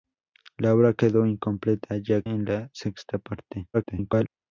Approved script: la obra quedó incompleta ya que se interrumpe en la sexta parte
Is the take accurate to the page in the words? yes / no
no